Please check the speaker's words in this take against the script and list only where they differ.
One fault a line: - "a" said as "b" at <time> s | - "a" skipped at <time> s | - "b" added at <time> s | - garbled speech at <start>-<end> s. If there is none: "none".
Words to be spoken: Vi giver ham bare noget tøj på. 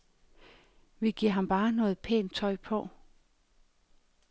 - "pænt" added at 2.0 s